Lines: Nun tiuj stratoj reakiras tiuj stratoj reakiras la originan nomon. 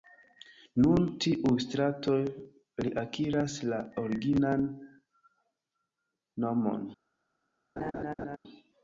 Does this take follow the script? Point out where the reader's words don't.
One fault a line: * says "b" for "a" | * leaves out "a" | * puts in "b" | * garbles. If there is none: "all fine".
* leaves out "tiuj stratoj reakiras"